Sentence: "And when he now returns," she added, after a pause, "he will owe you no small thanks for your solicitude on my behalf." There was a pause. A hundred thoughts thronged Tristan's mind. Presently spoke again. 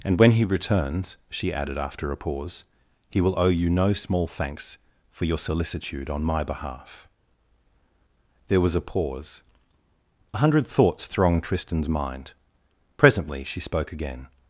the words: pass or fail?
fail